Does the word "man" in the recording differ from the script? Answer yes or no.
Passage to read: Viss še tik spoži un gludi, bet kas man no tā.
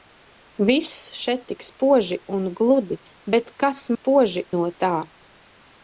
yes